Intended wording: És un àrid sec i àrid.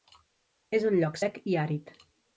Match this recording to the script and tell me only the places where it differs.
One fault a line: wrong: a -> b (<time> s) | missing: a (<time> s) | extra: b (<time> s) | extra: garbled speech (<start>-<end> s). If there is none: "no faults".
wrong: àrid -> lloc (1.0 s)